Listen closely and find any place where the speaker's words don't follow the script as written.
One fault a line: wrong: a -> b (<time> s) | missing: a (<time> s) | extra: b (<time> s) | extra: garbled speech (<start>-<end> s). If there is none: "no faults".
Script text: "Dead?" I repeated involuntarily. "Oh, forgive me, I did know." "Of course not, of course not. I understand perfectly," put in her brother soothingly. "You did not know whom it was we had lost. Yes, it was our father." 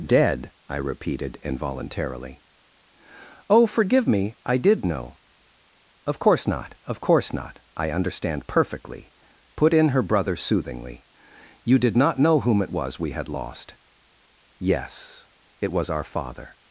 no faults